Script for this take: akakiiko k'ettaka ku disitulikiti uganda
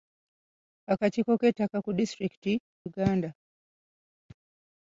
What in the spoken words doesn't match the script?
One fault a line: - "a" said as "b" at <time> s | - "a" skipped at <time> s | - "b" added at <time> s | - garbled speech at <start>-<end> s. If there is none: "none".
none